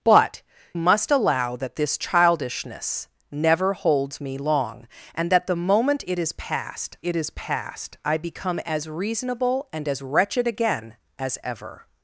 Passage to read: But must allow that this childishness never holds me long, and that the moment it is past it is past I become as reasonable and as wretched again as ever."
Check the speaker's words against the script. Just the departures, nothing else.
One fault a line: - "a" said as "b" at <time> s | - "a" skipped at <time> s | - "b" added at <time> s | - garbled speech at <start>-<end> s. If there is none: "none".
none